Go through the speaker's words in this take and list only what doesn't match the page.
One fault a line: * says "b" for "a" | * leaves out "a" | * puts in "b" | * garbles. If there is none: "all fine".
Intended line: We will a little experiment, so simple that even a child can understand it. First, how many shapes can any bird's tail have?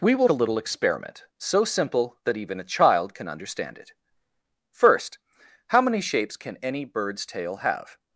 all fine